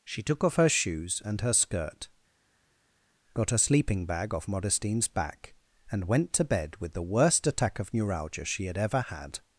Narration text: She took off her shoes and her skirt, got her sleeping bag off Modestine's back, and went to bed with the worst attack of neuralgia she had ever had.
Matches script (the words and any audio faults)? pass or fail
fail